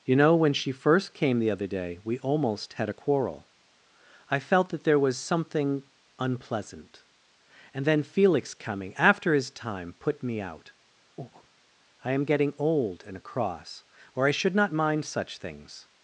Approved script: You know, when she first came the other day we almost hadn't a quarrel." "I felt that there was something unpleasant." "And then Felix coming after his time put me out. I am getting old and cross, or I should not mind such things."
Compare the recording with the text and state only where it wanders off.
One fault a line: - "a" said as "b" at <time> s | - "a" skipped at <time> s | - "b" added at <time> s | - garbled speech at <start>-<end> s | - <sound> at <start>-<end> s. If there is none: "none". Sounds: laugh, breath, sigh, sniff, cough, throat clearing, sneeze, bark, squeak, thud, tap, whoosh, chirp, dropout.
- "hadn't" said as "had" at 2.7 s
- breath at 11.2-11.5 s